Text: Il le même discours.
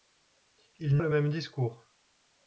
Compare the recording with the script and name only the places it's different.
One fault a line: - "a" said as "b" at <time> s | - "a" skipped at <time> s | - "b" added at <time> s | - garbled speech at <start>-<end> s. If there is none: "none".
none